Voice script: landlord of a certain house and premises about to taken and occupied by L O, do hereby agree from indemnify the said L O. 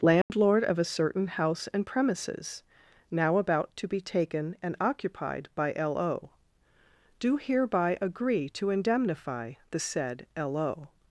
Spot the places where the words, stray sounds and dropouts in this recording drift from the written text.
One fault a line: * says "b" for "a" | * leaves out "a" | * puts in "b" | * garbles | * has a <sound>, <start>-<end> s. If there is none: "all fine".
* has a dropout, 0.2-0.3 s
* puts in "now"
* puts in "be"
* says "to" for "from"